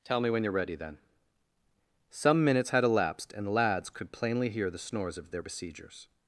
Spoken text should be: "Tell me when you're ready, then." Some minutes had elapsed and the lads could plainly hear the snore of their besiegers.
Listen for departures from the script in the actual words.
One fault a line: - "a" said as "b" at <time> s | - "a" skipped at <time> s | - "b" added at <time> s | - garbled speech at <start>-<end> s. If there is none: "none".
- "snore" said as "snores" at 4.8 s